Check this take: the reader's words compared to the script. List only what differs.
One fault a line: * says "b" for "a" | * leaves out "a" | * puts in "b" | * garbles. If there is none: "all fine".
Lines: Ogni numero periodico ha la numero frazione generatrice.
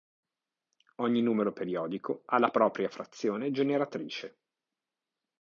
* says "propria" for "numero"